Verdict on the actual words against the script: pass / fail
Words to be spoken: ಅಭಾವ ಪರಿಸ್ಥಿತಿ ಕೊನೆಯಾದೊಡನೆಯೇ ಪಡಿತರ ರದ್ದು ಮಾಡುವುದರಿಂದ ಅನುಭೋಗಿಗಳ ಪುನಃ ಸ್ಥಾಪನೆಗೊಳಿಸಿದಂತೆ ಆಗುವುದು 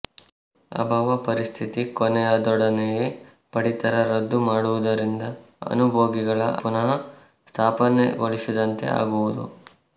pass